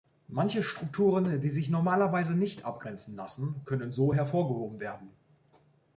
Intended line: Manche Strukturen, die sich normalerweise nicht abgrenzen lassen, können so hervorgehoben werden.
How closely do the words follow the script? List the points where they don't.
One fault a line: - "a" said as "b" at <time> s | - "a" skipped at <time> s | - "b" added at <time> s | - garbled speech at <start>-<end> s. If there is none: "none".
none